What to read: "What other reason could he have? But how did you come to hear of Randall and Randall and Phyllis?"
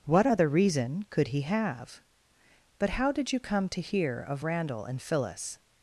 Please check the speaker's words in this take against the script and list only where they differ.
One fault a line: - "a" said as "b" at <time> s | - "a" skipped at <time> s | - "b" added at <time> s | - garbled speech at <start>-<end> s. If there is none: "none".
- "Randall and" skipped at 5.0 s